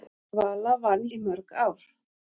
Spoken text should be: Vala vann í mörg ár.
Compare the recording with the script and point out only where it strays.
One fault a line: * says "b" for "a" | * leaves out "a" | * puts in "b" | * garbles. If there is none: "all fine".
all fine